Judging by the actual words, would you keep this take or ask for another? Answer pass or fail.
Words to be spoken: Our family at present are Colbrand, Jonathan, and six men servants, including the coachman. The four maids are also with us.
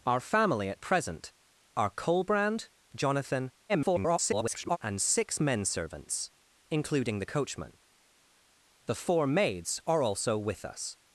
fail